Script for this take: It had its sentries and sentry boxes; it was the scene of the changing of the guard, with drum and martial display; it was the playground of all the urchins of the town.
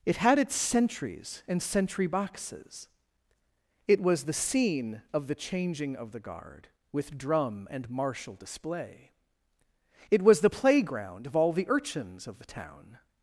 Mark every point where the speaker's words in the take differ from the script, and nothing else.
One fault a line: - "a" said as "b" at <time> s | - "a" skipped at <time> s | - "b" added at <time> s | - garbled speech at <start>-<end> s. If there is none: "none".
none